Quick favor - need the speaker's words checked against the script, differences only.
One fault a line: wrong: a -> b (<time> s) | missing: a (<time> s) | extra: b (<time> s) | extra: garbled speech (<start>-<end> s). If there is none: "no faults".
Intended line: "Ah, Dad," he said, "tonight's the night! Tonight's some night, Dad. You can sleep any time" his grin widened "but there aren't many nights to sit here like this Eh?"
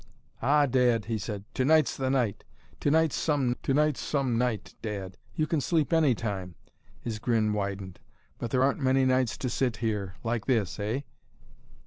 extra: tonight's some (3.6 s)